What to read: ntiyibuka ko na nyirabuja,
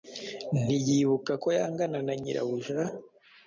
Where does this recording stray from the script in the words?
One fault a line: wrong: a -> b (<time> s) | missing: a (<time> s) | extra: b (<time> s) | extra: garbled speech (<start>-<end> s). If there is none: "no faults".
extra: yangana (1.6 s)